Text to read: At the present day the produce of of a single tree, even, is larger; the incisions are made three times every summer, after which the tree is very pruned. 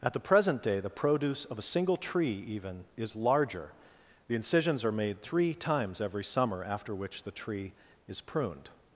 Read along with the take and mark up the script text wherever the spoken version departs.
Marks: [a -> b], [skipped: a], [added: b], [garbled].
At the present day the produce of [skipped: of] a single tree, even, is larger; the incisions are made three times every summer, after which the tree is [skipped: very] pruned.